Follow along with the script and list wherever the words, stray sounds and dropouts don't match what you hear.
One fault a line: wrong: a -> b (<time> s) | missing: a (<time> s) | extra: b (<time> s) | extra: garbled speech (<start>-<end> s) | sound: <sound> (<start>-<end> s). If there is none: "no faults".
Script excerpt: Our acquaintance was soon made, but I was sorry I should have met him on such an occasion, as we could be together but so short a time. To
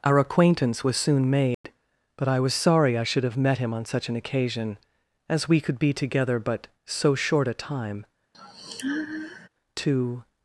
sound: dropout (1.5-1.6 s)
sound: sigh (8.3-9.5 s)